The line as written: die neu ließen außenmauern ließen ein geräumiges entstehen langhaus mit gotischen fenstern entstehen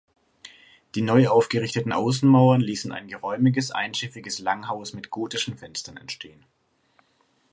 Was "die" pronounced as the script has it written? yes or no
yes